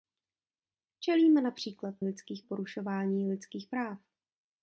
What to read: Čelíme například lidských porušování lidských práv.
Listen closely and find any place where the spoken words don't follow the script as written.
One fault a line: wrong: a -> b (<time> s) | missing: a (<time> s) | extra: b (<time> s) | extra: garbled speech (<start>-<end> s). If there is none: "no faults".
no faults